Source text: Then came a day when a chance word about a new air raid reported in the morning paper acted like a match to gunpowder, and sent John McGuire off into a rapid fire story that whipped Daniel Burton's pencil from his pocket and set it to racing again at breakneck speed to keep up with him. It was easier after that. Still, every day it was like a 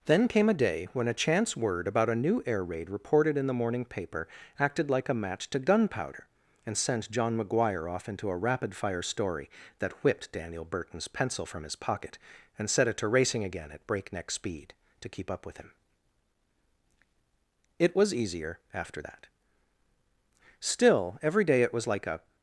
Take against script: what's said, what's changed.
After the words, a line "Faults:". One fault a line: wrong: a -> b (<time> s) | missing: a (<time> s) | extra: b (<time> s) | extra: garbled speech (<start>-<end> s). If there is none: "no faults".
Then came a day when a chance word about a new air raid reported in the morning paper acted like a match to gunpowder, and sent John McGuire off into a rapid fire story that whipped Daniel Burton's pencil from his pocket and set it to racing again at breakneck speed to keep up with him. It was easier after that. Still, every day it was like a
Faults:
no faults